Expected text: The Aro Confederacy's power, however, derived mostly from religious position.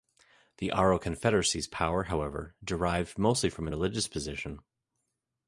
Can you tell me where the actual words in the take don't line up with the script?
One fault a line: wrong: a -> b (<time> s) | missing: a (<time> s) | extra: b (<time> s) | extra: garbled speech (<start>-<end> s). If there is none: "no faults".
no faults